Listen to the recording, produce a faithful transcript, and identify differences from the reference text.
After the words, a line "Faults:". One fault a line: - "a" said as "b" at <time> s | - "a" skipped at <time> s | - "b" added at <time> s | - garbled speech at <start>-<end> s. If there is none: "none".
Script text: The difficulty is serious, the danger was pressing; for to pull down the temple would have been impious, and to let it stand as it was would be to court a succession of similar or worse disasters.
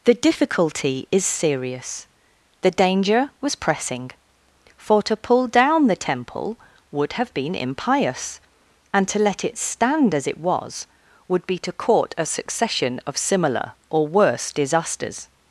The difficulty is serious, the danger was pressing; for to pull down the temple would have been impious, and to let it stand as it was would be to court a succession of similar or worse disasters.
Faults:
none